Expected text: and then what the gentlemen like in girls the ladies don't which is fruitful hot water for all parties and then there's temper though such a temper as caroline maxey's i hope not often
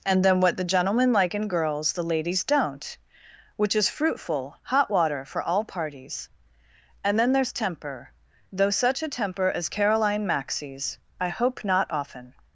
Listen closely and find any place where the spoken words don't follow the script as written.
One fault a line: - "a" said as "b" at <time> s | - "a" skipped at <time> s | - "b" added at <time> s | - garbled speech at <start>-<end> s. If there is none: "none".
none